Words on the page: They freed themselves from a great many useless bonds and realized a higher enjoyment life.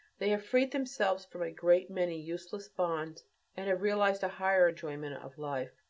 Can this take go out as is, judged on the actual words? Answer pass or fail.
fail